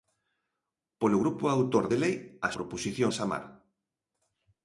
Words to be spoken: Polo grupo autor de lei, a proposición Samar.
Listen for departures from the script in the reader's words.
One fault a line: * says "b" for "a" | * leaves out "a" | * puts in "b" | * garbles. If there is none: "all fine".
all fine